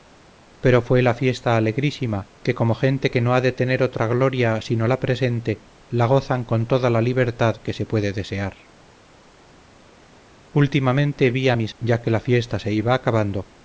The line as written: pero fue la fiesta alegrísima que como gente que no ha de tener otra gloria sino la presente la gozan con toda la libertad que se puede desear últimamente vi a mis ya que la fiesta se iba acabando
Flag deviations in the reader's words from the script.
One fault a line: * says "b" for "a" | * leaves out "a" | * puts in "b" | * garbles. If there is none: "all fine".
all fine